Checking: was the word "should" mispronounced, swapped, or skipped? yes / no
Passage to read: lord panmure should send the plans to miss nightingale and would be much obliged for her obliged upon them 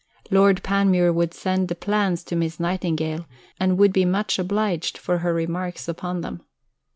yes